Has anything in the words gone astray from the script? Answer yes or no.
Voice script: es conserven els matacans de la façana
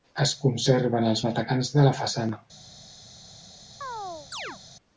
no